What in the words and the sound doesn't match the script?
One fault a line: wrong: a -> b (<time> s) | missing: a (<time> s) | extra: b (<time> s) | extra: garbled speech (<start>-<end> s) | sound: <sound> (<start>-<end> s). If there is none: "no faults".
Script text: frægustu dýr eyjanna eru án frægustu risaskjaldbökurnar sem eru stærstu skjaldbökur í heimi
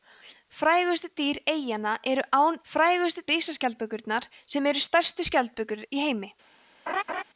sound: laugh (6.9-7.2 s)